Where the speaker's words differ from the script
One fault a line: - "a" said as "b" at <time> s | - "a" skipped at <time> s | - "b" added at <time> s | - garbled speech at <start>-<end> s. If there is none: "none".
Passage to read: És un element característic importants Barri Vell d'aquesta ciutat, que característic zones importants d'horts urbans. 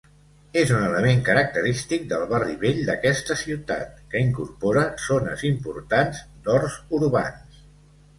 - "importants" said as "del" at 2.1 s
- "característic" said as "incorpora" at 4.3 s